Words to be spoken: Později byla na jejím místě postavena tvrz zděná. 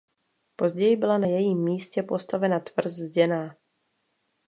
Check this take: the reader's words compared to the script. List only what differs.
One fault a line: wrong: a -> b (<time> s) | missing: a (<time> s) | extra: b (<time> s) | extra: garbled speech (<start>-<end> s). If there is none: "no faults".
no faults